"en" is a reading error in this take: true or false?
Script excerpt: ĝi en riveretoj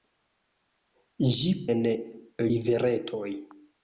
false